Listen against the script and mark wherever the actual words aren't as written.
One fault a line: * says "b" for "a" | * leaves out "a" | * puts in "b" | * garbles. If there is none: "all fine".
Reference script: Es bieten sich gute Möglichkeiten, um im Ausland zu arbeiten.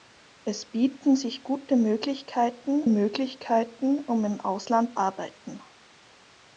* puts in "Möglichkeiten"
* leaves out "zu"